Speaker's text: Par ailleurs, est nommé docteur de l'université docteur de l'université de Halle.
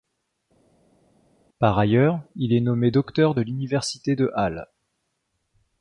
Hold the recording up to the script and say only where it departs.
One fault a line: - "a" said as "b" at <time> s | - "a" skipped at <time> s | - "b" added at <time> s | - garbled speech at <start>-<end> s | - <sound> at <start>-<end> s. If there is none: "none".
- "il" added at 2.3 s
- "docteur de l'université" skipped at 4.2 s